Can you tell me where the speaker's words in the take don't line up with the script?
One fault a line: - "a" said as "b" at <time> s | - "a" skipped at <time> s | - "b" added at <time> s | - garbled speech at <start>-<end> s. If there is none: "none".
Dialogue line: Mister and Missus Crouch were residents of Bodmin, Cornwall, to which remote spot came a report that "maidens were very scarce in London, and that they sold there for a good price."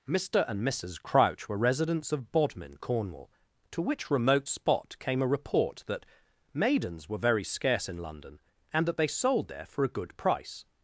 none